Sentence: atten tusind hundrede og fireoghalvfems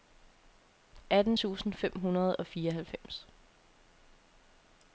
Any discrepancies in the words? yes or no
yes